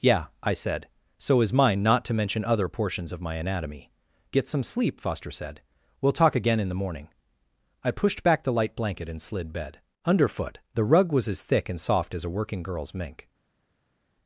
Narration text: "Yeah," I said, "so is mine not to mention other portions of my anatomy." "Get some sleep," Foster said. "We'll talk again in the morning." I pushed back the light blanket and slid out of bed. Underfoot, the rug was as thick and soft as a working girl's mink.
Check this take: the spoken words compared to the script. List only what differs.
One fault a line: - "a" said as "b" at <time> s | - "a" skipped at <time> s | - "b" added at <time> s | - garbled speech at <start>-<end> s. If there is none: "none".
- "out of" skipped at 9.5 s